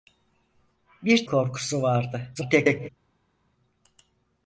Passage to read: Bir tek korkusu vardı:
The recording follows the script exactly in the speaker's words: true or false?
false